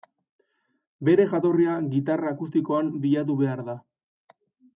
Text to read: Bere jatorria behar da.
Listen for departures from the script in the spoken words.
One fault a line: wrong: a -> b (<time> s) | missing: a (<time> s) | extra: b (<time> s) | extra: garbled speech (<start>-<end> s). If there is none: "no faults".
extra: gitarra akustikoan bilatu (1.9 s)